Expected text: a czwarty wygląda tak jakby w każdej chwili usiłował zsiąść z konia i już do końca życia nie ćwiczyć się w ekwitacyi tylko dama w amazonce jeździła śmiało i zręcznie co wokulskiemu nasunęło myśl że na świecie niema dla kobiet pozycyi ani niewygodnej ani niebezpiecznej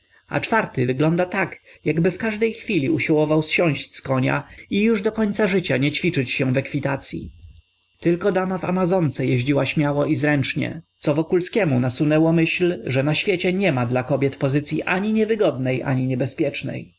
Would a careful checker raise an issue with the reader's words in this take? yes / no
no